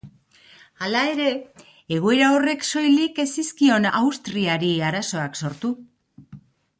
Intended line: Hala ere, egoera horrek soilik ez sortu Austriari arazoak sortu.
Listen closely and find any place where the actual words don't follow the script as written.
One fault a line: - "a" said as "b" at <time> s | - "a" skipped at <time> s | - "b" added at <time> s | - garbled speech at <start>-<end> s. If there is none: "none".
- "sortu" said as "zizkion" at 3.4 s